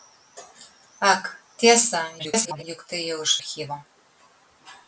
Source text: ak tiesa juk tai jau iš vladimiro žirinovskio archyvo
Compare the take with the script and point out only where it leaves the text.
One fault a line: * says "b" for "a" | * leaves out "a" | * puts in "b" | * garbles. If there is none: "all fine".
* garbles
* leaves out "vladimiro žirinovskio"